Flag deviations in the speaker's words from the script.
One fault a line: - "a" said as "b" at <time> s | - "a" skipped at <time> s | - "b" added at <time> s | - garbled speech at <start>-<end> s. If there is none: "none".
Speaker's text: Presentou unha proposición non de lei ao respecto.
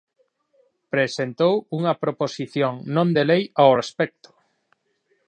none